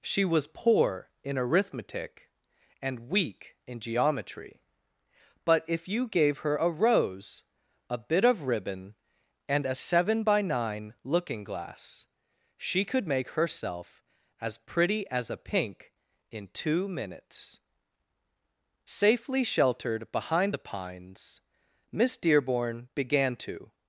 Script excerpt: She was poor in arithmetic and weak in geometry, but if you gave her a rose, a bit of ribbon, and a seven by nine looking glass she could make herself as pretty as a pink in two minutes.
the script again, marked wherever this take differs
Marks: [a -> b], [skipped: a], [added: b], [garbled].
She was poor in arithmetic and weak in geometry, but if you gave her a rose, a bit of ribbon, and a seven by nine looking glass she could make herself as pretty as a pink in two minutes. [added: Safely sheltered behind the pines Miss Dearborn began to]